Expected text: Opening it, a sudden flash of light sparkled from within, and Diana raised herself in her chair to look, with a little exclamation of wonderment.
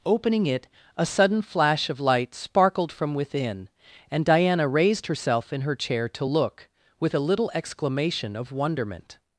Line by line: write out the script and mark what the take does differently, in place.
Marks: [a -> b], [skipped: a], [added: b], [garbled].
Opening it, a sudden flash of light sparkled from within, and Diana raised herself in her chair to look, with a little exclamation of wonderment.